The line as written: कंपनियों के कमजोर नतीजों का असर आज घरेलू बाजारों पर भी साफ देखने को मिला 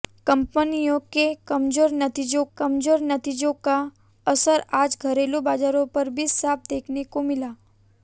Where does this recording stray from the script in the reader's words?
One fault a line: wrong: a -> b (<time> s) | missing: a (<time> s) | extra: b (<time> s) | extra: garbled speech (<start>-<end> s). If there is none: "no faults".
extra: कमजोर नतीजों (2.6 s)